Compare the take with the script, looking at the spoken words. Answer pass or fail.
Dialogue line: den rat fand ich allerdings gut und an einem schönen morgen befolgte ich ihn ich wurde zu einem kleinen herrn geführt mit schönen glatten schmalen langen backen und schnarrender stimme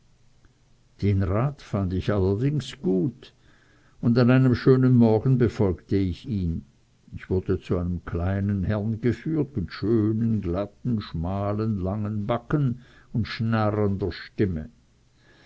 pass